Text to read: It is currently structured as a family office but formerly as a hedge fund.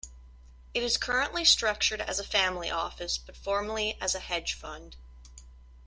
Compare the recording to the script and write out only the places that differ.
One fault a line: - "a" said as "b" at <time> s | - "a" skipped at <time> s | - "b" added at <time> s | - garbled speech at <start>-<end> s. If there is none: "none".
none